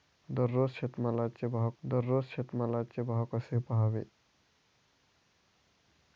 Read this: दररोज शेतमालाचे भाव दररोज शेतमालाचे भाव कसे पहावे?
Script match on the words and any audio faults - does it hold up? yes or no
yes